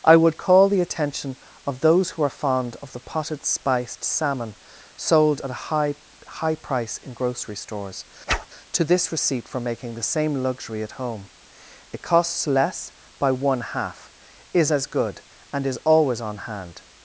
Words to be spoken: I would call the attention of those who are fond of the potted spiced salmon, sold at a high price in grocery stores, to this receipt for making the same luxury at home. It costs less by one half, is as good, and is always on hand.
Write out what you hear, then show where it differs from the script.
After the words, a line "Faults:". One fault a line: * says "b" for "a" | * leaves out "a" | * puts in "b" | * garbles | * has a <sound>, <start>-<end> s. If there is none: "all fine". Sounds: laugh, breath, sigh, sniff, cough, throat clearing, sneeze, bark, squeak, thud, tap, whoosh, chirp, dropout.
I would call the attention of those who are fond of the potted spiced salmon, sold at a high high price in grocery stores, to this receipt for making the same luxury at home. It costs less by one half, is as good, and is always on hand.
Faults:
* puts in "high"
* has a whoosh, 8.3-8.5 s